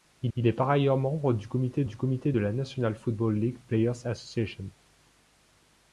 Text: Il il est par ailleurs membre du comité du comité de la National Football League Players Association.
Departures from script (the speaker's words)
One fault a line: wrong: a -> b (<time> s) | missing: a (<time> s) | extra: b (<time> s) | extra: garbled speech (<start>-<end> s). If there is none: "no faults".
no faults